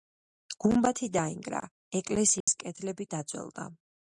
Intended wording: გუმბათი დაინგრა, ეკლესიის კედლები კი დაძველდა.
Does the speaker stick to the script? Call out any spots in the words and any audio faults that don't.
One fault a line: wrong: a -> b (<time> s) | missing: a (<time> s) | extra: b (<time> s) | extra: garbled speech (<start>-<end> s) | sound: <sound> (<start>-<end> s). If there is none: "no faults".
sound: dropout (2.4-2.5 s)
missing: კი (3.1 s)